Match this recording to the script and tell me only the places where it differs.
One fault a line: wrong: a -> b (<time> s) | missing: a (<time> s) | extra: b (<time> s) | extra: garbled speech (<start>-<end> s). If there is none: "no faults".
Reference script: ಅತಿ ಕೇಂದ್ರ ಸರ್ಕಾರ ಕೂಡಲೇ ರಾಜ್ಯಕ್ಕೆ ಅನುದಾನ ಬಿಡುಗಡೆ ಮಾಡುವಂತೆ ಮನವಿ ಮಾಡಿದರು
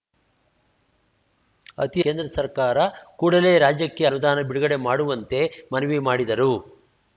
no faults